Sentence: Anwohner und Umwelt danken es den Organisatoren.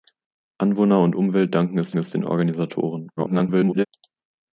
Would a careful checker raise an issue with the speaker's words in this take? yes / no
yes